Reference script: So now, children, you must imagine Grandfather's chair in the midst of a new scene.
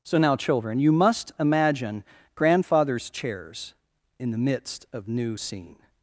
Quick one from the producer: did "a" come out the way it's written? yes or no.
no